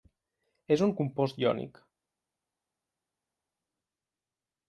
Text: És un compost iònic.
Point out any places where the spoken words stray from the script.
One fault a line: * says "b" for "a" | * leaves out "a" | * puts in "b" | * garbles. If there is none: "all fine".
all fine